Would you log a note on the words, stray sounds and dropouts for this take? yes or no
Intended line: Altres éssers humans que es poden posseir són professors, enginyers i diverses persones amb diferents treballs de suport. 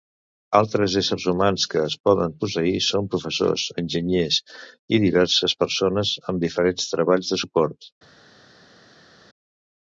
no